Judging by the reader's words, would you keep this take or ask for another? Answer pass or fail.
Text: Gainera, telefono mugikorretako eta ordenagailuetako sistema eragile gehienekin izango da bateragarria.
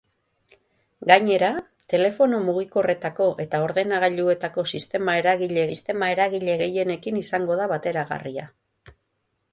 fail